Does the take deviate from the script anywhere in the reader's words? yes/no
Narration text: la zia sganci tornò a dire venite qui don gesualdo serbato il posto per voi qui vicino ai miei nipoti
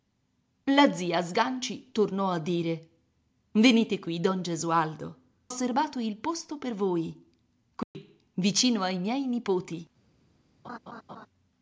no